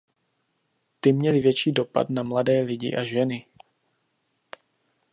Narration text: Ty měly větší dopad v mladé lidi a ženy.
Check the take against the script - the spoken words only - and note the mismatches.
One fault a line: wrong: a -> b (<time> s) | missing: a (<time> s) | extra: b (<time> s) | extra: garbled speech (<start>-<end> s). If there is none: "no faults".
wrong: v -> na (2.1 s)